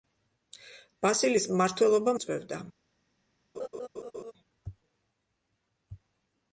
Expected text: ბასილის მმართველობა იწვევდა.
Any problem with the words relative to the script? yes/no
no